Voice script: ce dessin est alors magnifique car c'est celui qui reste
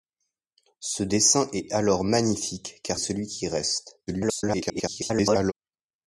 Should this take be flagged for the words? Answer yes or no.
yes